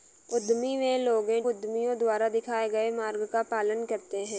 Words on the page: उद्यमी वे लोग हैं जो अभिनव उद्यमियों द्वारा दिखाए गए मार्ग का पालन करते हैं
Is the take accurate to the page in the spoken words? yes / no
no